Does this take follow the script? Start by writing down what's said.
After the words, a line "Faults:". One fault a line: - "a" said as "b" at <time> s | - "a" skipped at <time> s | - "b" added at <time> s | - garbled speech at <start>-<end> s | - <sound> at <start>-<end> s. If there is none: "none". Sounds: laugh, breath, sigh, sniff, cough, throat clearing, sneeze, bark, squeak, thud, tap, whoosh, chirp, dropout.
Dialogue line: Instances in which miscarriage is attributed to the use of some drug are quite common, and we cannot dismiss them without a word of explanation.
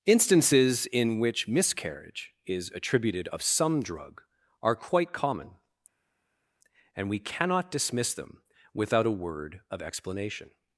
Instances in which miscarriage is attributed of some drug are quite common, and we cannot dismiss them without a word of explanation.
Faults:
- "to the use" skipped at 3.3 s